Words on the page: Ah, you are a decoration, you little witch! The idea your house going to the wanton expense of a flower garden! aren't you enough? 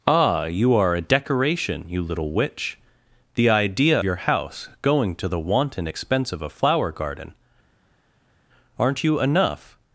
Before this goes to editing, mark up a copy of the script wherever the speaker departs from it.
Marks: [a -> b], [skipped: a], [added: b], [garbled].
Ah, you are a decoration, you little witch! The idea your house going to the wanton expense of a flower garden! aren't you enough?